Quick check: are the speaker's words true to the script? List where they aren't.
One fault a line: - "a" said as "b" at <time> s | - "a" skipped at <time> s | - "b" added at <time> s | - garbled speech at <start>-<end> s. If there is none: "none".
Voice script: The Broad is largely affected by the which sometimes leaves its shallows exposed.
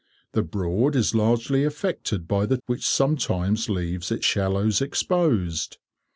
none